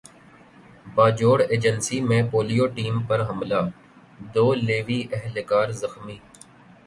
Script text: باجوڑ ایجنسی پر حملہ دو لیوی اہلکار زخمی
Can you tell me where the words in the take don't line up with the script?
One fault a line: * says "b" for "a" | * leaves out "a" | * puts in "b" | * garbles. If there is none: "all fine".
* puts in "میں پولیو ٹیم"